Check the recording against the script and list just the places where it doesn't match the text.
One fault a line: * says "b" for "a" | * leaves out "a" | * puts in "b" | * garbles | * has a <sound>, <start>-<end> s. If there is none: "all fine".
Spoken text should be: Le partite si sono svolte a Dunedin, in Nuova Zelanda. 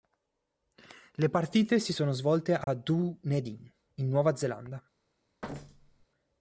* has a dropout, 2.6-2.7 s
* has a thud, 5.4-6.1 s